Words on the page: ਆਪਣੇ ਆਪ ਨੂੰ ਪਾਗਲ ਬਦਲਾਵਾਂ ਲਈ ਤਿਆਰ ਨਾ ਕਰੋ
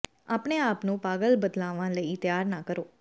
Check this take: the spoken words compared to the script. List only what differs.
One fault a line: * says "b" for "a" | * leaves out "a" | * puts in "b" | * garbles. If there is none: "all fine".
all fine